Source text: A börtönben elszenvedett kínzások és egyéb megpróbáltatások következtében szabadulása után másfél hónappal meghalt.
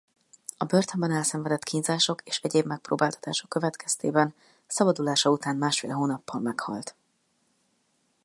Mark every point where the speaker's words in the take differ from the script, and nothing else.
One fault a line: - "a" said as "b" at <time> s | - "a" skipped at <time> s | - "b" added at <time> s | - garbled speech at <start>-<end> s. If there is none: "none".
none